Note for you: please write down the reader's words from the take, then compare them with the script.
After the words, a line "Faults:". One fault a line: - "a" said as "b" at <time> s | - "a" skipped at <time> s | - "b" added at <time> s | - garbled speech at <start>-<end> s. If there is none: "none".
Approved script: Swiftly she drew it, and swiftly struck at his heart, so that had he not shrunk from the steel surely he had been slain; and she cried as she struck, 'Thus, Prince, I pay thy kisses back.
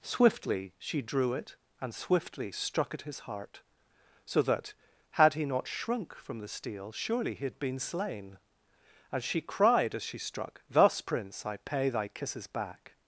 Swiftly she drew it, and swiftly struck at his heart, so that had he not shrunk from the steel surely he had been slain; and she cried as she struck, 'Thus, Prince, I pay thy kisses back.
Faults:
none